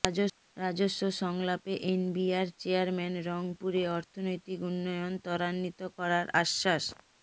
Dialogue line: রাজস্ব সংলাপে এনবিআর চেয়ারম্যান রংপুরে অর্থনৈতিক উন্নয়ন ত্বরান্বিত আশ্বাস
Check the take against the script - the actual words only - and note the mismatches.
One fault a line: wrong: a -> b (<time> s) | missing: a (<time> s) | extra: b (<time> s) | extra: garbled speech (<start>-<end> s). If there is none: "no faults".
extra: করার (6.0 s)